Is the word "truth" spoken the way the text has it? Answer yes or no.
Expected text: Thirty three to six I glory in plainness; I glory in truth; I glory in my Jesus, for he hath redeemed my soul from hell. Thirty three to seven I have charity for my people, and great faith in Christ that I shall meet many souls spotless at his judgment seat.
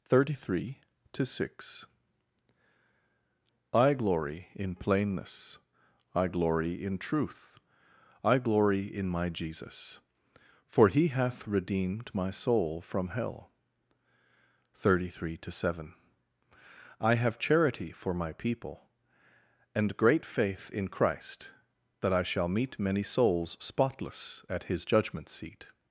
yes